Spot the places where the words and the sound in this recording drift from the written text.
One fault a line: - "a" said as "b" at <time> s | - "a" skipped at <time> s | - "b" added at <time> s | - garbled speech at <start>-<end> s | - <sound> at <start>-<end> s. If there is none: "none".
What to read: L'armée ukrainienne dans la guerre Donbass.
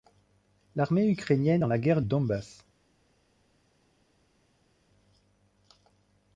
none